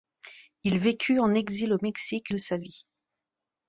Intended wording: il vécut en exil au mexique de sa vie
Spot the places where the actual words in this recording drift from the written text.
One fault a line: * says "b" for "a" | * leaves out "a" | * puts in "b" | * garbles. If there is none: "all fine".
all fine